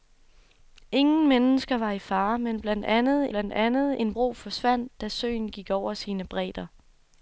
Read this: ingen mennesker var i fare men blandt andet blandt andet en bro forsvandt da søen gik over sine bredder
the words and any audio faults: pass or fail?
pass